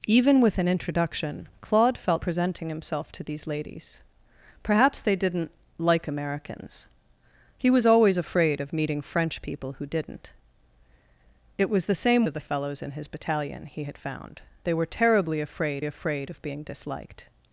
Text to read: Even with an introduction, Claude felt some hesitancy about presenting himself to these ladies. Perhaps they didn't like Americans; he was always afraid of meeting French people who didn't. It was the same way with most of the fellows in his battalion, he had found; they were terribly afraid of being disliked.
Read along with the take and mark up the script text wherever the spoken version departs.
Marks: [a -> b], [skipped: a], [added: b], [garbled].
Even with an introduction, Claude felt [skipped: some hesitancy about] presenting himself to these ladies. Perhaps they didn't like Americans; he was always afraid of meeting French people who didn't. It was the same [skipped: way with most] of the fellows in his battalion, he had found; they were terribly afraid [added: afraid] of being disliked.